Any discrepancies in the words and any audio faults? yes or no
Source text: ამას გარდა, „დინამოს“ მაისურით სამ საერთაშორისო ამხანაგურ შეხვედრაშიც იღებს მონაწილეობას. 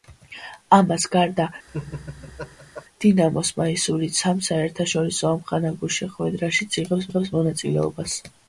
yes